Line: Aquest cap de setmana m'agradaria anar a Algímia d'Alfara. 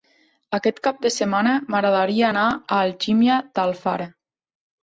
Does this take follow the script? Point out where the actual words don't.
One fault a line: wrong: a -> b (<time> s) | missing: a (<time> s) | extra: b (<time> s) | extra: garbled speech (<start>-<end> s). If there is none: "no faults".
no faults